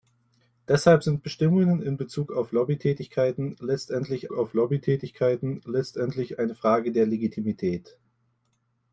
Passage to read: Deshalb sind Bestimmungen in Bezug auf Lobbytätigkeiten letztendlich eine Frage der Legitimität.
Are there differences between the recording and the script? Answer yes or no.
yes